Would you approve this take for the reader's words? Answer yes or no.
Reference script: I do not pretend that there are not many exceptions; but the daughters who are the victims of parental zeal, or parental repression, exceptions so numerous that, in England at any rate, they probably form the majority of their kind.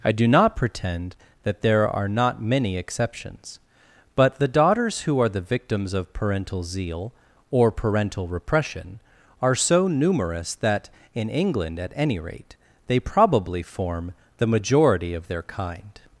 no